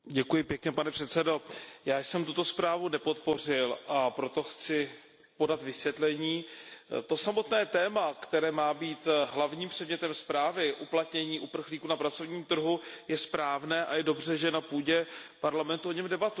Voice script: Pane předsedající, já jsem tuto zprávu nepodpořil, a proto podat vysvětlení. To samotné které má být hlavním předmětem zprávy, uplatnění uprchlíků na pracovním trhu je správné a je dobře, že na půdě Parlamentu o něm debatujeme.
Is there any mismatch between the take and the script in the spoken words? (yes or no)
yes